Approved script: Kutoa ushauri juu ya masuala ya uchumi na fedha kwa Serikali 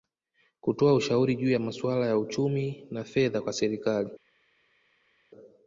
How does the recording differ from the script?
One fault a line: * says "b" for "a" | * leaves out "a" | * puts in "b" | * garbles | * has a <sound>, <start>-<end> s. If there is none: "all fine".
all fine